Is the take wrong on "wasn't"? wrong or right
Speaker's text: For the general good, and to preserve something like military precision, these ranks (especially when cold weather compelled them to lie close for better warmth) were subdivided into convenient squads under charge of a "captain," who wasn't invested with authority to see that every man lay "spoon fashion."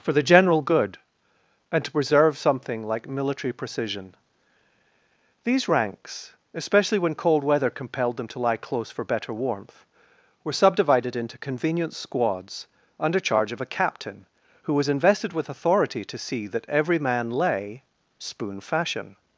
wrong